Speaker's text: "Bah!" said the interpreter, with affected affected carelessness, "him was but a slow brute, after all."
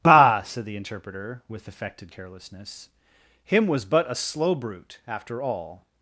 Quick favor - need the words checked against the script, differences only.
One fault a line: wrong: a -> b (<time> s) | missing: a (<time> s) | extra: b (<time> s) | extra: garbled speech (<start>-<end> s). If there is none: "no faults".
missing: affected (2.1 s)